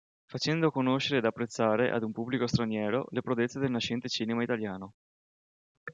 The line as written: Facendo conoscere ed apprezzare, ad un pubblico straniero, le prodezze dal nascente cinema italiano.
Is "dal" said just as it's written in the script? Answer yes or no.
no